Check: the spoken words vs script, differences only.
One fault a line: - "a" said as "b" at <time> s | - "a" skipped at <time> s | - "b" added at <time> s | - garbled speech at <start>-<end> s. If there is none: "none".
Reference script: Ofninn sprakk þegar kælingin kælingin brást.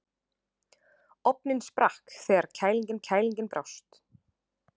none